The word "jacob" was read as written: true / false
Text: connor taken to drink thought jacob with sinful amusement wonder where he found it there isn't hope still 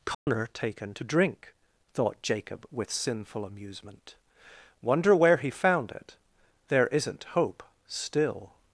true